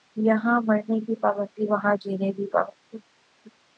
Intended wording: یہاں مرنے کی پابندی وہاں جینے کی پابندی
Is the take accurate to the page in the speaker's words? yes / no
yes